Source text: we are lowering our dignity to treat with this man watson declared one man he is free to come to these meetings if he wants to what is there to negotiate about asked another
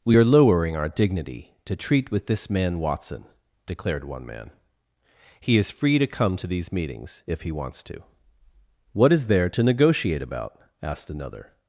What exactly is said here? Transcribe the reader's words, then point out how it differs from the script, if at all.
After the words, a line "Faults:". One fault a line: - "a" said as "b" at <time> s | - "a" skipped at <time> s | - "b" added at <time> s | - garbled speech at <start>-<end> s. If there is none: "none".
we are lowering our dignity to treat with this man watson declared one man he is free to come to these meetings if he wants to what is there to negotiate about asked another
Faults:
none